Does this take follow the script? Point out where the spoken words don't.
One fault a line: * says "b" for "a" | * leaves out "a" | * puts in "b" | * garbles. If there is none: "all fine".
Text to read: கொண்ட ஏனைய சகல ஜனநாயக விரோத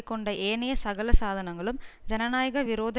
* puts in "சாதனங்களும்"